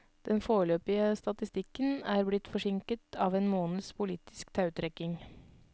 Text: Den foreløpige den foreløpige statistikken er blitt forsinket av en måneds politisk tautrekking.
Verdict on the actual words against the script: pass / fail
fail